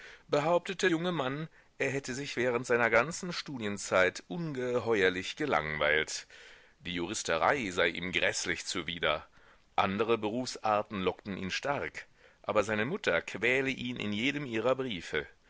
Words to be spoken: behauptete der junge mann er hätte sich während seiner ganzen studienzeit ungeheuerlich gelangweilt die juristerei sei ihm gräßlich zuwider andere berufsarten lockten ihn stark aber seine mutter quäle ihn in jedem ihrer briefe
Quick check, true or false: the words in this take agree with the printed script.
false